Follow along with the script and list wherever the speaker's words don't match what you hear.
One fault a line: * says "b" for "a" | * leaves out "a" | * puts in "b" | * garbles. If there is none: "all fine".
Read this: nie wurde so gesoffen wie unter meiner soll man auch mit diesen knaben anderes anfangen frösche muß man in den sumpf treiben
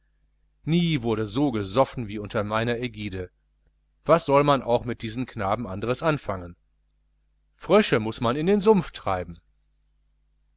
* puts in "ägide was"